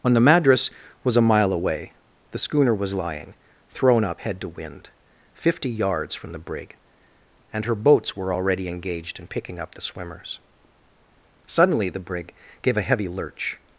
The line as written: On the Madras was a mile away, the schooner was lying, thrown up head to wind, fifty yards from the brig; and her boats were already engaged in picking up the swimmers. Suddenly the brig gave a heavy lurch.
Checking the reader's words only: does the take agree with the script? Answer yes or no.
yes